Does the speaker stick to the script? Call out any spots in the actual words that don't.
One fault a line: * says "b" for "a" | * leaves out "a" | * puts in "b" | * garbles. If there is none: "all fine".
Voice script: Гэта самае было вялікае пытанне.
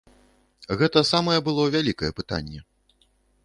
all fine